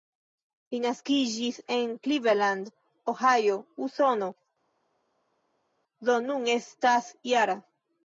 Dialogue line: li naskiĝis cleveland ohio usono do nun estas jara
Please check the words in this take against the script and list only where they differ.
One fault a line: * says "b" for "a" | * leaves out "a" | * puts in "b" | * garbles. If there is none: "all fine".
* puts in "en"